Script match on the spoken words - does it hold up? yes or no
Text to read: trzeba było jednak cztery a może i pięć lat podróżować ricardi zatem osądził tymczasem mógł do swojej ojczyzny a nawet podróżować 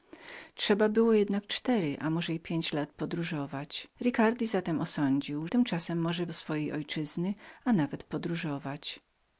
yes